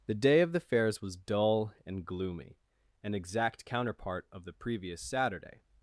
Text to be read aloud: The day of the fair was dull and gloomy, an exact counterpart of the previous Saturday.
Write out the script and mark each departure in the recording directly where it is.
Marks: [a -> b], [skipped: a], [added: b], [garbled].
The day of the [fair -> fairs] was dull and gloomy, an exact counterpart of the previous Saturday.